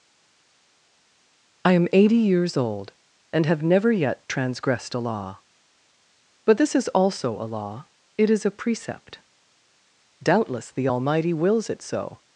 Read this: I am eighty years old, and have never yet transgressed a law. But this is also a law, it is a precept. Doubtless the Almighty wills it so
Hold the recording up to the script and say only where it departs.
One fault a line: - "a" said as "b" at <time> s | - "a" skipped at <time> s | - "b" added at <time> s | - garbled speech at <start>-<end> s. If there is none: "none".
none